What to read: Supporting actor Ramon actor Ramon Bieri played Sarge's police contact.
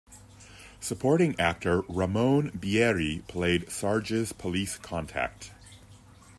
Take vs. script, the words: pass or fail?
fail